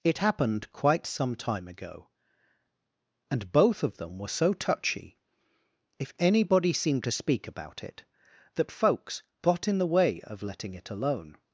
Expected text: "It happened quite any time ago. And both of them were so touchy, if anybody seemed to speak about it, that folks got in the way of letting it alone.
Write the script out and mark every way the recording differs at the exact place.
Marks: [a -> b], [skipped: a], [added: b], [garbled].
"It happened quite [any -> some] time ago. And both of them were so touchy, if anybody seemed to speak about it, that folks got in the way of letting it alone.